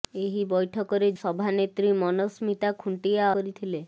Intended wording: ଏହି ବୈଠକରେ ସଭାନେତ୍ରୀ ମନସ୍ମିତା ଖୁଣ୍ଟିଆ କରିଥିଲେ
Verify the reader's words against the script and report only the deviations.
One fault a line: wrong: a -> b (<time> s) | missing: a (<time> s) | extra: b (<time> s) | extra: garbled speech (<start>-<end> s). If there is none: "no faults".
no faults